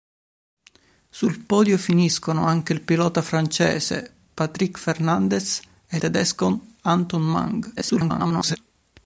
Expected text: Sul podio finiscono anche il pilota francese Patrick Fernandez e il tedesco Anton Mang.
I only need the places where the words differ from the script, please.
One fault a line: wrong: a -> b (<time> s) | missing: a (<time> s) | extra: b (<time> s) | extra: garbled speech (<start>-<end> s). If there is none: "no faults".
missing: il (6.0 s)
extra: garbled speech (7.8-8.6 s)